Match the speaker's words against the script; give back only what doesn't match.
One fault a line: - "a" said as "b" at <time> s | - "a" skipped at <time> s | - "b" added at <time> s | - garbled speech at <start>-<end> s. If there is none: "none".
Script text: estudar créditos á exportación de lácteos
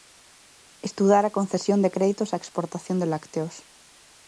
- "a concesión de" added at 1.2 s